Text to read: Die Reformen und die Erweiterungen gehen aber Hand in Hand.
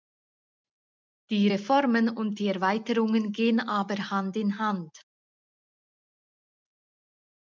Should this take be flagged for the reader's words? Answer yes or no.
no